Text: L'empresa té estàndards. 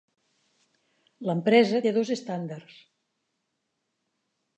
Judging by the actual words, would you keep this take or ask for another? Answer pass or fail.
fail